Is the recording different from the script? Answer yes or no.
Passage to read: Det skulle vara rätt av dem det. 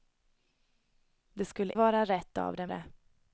no